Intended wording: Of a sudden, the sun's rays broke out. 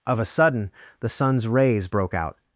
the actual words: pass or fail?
pass